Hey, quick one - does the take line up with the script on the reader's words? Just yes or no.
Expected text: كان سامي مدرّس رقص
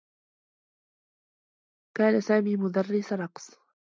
yes